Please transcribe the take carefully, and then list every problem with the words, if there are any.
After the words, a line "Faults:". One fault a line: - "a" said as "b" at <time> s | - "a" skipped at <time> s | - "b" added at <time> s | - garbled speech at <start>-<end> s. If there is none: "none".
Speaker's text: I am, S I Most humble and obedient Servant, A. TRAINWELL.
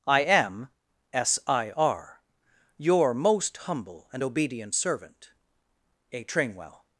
I am, S I R, Your most humble and obedient Servant, A. TRAINWELL.
Faults:
- "R Your" added at 1.7 s